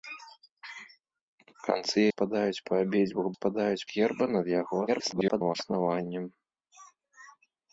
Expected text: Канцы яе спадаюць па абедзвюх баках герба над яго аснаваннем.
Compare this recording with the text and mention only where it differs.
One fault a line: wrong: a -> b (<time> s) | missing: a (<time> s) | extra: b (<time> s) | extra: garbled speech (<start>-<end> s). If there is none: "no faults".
missing: яе (2.0 s)
wrong: баках -> спадаюць (3.3 s)
extra: garbled speech (4.9-5.6 s)